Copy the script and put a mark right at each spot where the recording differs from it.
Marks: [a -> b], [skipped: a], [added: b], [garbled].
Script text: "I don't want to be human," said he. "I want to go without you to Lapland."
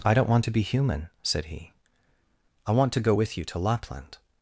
"I don't want to be human," said he. "I want to go [without -> with] you to Lapland."